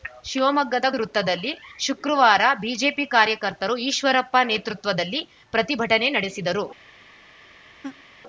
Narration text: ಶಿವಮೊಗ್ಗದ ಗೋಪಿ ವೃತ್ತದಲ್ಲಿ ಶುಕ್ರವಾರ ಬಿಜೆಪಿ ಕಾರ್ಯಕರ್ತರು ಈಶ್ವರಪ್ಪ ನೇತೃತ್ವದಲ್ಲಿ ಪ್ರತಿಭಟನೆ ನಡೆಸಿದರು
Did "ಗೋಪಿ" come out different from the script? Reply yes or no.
yes